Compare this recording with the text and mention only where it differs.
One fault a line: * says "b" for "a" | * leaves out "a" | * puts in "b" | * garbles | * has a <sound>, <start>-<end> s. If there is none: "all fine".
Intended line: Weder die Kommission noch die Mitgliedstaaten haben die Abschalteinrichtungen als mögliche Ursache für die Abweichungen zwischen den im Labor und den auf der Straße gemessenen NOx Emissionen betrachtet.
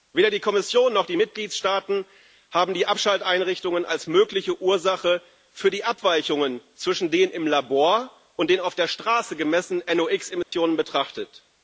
* has a dropout, 10.4-10.5 s